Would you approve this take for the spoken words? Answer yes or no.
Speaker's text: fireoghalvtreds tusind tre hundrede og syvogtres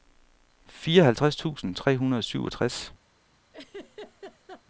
yes